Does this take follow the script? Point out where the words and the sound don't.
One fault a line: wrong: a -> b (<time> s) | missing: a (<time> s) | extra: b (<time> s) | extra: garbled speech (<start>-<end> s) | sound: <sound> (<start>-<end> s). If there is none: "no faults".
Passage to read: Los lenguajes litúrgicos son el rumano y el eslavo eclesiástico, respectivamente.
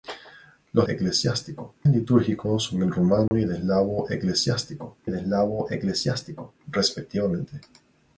wrong: lenguajes -> eclesiástico (0.9 s)
sound: dropout (3.3-3.3 s)
extra: el eslavo eclesiástico (5.1 s)